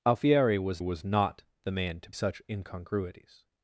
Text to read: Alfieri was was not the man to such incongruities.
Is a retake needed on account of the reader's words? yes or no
no